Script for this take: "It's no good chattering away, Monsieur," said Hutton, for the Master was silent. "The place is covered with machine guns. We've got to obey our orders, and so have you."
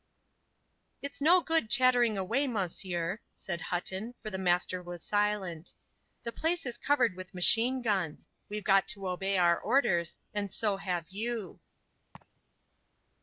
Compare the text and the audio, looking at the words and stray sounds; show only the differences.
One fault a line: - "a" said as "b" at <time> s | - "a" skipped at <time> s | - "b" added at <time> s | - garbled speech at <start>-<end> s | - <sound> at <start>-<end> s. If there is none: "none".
- laugh at 12.1-12.4 s